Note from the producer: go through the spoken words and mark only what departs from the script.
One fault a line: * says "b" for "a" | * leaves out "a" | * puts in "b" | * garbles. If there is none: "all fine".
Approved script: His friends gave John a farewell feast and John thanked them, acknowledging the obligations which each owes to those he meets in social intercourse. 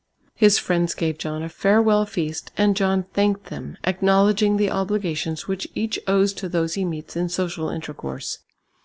all fine